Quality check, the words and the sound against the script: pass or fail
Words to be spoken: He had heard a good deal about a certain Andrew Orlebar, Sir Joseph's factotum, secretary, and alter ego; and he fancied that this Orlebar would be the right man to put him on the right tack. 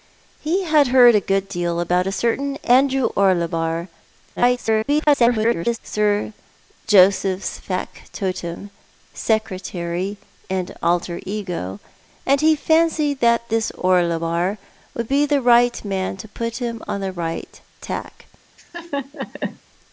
fail